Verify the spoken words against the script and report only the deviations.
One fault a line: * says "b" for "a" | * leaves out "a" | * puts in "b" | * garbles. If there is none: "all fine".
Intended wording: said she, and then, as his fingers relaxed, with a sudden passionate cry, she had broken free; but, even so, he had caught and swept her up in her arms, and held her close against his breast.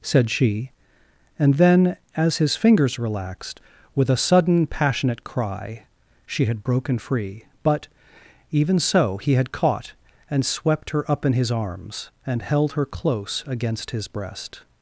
* says "his" for "her"